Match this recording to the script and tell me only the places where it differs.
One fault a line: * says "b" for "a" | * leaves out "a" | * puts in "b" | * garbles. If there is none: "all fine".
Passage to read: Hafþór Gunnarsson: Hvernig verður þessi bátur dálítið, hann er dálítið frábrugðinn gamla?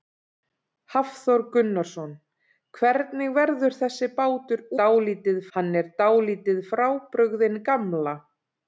all fine